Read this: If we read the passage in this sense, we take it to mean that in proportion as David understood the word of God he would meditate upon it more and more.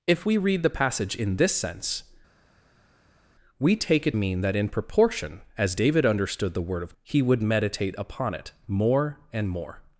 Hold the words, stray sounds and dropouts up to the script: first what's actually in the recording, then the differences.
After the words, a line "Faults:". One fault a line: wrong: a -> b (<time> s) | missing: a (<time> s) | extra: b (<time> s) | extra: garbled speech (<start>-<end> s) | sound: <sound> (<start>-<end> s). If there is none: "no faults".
If we read the passage in this sense, we take it mean that in proportion as David understood the word of He would meditate upon it more and more.
Faults:
missing: to (4.1 s)
missing: God (6.9 s)